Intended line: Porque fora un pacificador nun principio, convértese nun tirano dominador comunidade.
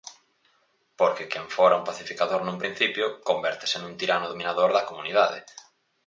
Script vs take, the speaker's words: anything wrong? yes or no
yes